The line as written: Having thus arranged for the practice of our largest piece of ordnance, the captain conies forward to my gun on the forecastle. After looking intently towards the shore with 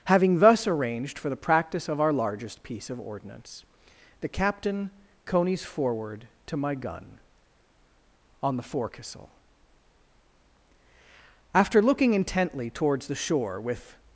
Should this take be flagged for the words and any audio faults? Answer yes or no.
no